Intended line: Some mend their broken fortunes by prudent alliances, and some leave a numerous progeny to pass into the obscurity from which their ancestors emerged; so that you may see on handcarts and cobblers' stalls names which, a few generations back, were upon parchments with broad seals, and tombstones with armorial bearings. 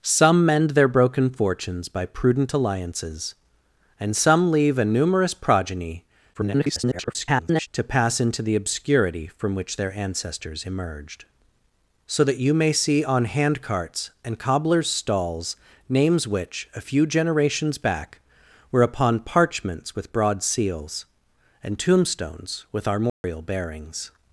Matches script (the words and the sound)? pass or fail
fail